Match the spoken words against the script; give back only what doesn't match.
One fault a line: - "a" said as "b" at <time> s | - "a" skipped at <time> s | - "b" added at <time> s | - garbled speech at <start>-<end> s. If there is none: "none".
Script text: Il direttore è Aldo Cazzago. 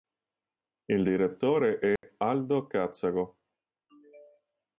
none